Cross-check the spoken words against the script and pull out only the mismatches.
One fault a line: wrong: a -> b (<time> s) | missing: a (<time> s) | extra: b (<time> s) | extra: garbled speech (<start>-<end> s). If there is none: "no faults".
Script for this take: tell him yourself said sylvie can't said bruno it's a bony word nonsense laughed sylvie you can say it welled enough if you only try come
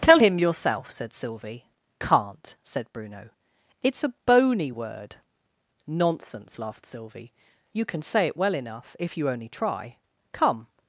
wrong: welled -> well (8.4 s)